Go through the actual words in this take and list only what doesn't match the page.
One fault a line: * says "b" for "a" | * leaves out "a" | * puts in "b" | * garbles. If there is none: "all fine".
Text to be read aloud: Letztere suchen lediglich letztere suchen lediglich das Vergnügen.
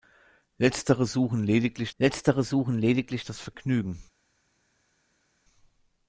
all fine